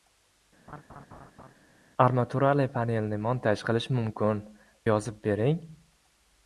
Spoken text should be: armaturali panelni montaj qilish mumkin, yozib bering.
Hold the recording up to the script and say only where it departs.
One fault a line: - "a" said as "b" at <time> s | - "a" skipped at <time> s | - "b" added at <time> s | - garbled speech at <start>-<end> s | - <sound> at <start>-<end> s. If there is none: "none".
- laugh at 0.7-1.5 s